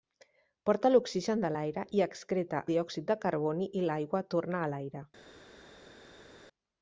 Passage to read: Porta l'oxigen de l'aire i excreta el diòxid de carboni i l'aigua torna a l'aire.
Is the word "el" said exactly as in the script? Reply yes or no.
no